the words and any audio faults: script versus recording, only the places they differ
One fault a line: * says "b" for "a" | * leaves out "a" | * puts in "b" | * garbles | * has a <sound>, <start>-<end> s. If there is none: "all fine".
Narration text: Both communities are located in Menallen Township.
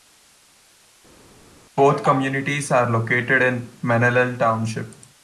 all fine